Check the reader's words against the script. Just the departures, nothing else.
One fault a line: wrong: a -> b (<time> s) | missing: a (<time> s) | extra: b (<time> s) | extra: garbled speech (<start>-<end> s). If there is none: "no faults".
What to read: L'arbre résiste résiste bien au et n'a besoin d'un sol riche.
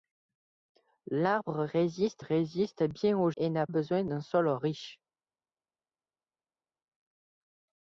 no faults